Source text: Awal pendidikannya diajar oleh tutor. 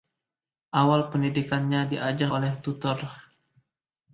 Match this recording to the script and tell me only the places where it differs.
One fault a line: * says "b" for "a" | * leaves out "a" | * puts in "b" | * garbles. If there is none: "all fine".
all fine